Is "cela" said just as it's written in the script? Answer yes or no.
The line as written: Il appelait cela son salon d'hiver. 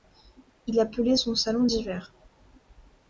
no